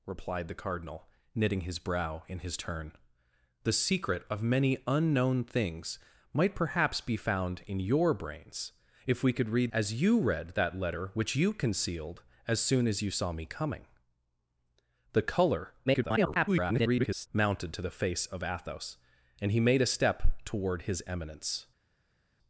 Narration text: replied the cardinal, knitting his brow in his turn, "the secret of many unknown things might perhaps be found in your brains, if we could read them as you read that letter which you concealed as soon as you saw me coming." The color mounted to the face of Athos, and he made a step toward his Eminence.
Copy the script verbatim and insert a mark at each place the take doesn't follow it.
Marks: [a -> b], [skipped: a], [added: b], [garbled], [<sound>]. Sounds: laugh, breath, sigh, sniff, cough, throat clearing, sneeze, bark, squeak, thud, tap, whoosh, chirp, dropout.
replied the cardinal, knitting his brow in his turn, "the secret of many unknown things might perhaps be found in your brains, if we could read [skipped: them] as you read that letter which you concealed as soon as you saw me coming." The color [garbled] mounted to the face of Athos, and he made a step toward his Eminence.